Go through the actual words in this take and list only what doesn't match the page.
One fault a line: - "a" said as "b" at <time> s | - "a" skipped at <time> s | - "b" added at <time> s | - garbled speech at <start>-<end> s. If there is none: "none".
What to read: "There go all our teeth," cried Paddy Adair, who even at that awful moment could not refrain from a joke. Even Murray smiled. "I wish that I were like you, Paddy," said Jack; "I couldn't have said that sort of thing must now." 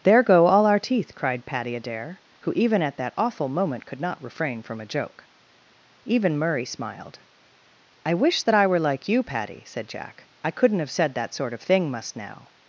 none